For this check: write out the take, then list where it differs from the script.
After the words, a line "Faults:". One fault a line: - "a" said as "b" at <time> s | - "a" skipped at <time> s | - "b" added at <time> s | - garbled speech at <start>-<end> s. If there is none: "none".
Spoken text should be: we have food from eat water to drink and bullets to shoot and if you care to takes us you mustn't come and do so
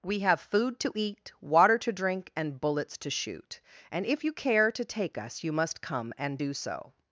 we have food to eat water to drink and bullets to shoot and if you care to take us you must come and do so
Faults:
- "from" said as "to" at 0.8 s
- "takes" said as "take" at 4.8 s
- "mustn't" said as "must" at 5.5 s